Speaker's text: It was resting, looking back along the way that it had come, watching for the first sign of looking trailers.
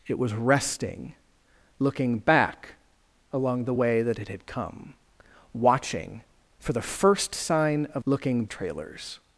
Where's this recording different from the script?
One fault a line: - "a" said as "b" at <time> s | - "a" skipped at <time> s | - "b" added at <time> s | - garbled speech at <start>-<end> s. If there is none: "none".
none